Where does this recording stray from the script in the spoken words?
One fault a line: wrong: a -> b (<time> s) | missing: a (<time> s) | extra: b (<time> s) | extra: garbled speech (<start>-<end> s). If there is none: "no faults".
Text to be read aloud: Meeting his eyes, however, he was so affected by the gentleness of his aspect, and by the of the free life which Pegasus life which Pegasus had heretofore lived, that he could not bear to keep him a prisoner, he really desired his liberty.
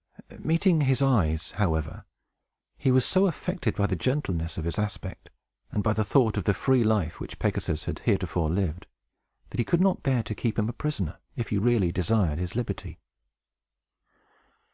extra: thought (6.0 s)
missing: life which Pegasus (7.8 s)
extra: if (11.3 s)